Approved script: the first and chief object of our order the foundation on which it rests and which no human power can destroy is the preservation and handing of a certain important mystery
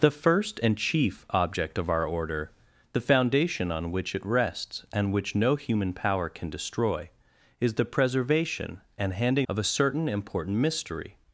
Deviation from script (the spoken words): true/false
false